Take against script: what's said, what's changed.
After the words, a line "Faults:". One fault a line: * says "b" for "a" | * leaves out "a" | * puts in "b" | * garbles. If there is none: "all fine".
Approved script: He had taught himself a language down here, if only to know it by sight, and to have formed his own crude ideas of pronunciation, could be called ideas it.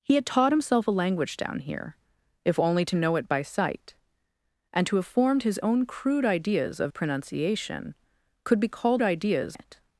He had taught himself a language down here, if only to know it by sight, and to have formed his own crude ideas of pronunciation, could be called ideas it.
Faults:
all fine